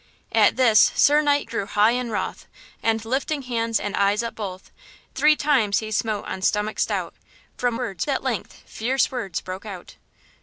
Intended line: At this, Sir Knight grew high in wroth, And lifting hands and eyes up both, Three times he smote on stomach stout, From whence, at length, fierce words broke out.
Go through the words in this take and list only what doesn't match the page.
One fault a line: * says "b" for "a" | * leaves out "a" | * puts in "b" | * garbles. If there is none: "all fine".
* says "words" for "whence"